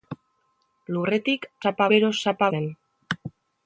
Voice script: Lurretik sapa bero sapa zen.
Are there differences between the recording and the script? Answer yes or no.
no